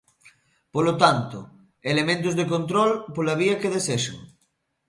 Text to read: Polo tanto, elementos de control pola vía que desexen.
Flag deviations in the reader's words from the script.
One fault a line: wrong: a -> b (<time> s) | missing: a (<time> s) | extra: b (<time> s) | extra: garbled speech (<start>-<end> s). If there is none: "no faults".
no faults